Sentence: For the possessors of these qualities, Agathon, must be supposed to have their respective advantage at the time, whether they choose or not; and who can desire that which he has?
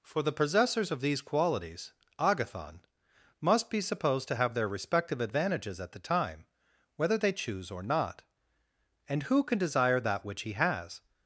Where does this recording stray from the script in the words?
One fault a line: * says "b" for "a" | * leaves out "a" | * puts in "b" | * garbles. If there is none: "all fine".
* says "advantages" for "advantage"